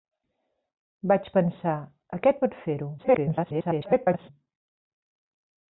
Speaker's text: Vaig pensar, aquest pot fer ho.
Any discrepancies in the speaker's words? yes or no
yes